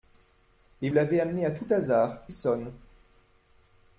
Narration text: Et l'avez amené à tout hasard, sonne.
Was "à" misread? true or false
false